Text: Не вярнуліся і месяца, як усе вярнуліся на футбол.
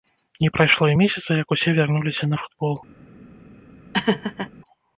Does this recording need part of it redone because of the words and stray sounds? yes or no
yes